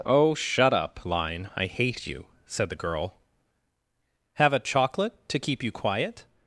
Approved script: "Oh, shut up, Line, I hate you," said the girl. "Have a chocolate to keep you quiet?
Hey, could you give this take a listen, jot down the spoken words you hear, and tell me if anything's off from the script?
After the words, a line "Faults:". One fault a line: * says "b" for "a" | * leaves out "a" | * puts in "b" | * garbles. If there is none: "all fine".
"Oh, shut up, Line, I hate you," said the girl. "Have a chocolate to keep you quiet?
Faults:
all fine